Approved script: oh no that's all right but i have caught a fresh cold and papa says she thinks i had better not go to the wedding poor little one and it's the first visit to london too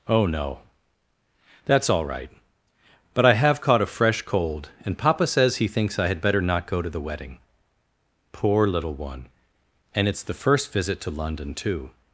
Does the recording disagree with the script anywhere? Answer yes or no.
yes